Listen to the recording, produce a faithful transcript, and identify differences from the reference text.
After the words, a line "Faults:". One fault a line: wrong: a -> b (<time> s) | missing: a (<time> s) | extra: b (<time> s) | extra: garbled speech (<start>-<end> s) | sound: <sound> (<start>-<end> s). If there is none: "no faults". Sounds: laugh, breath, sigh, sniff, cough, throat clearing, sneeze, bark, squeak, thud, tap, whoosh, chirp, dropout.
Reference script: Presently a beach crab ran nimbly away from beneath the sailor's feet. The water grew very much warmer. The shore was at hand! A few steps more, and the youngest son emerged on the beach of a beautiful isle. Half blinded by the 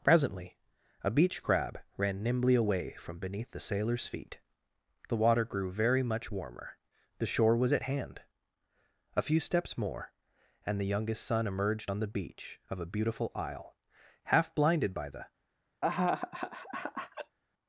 Presently a beach crab ran nimbly away from beneath the sailor's feet. The water grew very much warmer. The shore was at hand! A few steps more, and the youngest son emerged on the beach of a beautiful isle. Half blinded by the
Faults:
sound: laugh (15.8-17.4 s)